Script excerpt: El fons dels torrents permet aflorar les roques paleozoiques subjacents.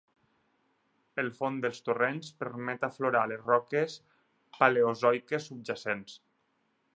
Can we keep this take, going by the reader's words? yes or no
yes